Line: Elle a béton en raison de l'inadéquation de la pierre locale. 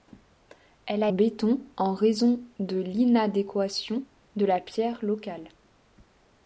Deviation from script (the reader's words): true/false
false